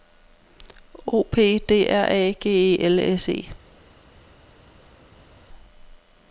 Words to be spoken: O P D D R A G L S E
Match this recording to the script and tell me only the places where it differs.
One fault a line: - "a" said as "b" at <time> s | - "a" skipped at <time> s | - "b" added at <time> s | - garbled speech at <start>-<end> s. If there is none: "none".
- "D" skipped at 1.9 s
- "E" added at 2.5 s